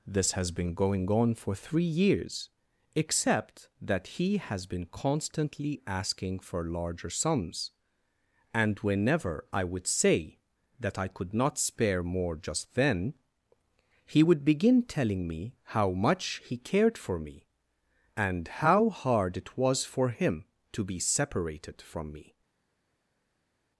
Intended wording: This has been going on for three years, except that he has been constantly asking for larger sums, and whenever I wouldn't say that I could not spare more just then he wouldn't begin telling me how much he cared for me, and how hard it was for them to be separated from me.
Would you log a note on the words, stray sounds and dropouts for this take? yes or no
yes